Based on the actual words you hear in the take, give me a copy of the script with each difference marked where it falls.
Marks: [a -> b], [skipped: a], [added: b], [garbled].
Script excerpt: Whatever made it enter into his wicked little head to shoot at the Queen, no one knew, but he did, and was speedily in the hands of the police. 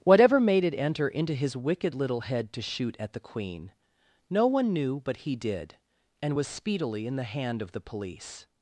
Whatever made it enter into his wicked little head to shoot at the Queen, no one knew, but he did, and was speedily in the [hands -> hand] of the police.